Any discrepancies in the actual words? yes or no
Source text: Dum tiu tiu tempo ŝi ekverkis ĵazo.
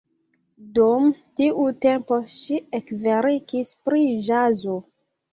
yes